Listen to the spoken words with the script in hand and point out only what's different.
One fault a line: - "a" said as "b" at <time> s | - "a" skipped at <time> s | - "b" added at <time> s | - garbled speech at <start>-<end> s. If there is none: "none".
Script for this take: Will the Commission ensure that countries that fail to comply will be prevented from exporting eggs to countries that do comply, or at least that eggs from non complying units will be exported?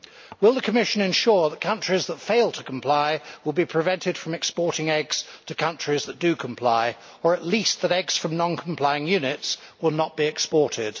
- "not" added at 9.9 s